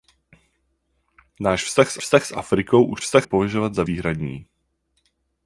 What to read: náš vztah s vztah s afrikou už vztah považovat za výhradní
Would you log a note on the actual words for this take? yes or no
no